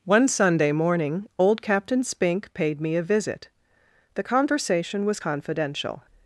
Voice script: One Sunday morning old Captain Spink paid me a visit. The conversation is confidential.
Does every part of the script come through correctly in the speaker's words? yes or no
no